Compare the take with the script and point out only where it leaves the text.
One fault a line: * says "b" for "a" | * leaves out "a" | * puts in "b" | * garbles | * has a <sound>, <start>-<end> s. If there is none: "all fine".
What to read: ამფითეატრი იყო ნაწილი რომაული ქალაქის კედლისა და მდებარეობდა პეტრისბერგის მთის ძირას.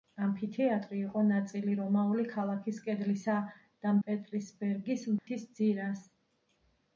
* leaves out "მდებარეობდა"
* has a dropout, 5.2-5.3 s